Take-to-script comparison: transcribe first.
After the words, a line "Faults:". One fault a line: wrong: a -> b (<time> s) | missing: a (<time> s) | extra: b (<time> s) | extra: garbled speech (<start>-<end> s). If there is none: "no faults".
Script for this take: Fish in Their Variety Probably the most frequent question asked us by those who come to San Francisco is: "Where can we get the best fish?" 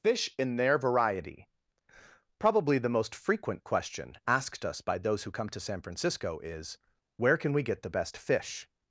Fish in Their Variety Probably the most frequent question asked us by those who come to San Francisco is: "Where can we get the best fish?"
Faults:
no faults